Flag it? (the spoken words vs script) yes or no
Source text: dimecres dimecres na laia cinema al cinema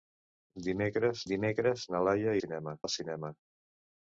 no